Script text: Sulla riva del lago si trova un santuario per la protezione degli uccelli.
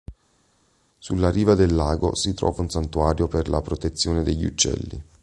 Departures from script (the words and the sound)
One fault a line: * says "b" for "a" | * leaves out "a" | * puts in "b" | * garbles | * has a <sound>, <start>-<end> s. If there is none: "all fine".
all fine